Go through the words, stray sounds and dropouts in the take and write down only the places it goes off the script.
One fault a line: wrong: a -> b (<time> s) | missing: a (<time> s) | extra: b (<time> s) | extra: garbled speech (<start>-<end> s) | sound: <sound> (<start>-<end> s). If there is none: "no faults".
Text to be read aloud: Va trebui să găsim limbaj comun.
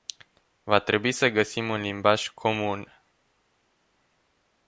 extra: un (1.7 s)